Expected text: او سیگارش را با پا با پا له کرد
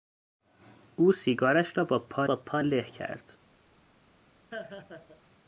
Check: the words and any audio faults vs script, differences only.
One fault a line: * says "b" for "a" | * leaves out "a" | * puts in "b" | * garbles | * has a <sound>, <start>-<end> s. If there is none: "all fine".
* has a laugh, 4.5-5.2 s